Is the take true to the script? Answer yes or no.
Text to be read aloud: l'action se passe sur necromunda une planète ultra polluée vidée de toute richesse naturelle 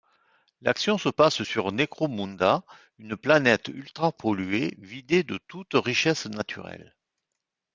yes